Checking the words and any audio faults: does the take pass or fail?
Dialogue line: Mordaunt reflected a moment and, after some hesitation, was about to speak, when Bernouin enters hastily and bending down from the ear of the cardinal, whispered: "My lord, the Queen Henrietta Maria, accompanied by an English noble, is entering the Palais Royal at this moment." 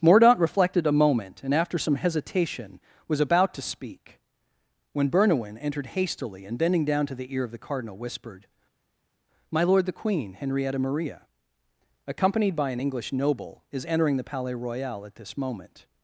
fail